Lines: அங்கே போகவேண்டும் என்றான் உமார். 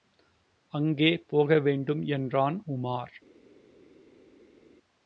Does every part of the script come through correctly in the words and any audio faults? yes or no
yes